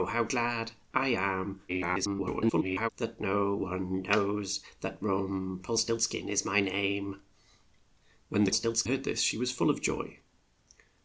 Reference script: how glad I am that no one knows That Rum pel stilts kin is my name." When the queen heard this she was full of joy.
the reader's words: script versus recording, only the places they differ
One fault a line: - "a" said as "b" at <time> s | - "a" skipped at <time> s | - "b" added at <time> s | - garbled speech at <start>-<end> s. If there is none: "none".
- garbled speech at 1.7-2.9 s
- "queen" said as "stilts" at 8.5 s